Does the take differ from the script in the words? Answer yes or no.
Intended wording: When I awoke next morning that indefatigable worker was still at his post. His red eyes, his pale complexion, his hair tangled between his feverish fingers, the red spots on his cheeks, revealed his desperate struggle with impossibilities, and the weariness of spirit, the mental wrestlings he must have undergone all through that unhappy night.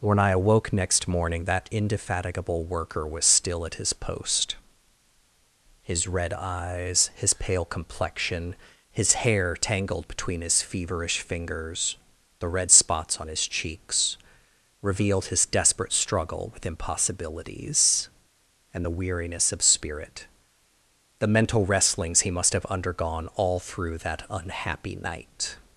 no